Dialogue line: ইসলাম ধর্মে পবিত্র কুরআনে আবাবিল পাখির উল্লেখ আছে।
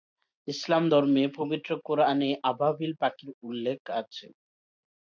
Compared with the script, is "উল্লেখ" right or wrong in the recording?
right